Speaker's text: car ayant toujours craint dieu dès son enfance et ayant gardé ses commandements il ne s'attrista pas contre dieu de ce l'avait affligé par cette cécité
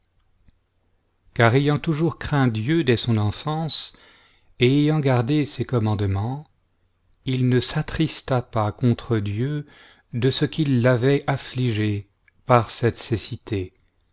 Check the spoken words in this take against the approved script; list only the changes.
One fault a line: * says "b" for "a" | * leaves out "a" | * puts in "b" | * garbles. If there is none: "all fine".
* puts in "qu'il"